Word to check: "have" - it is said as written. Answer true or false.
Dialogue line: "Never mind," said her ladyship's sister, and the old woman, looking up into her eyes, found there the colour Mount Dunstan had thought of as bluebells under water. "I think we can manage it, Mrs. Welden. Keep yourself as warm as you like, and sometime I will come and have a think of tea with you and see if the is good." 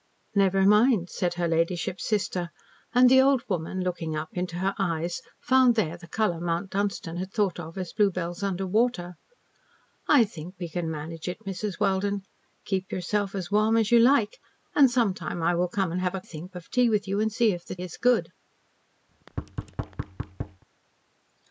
true